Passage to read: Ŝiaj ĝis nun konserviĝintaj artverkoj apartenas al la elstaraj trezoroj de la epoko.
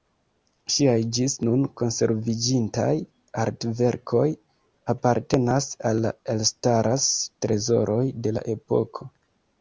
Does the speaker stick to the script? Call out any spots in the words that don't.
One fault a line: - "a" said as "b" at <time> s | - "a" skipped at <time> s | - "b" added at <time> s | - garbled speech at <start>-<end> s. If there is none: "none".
none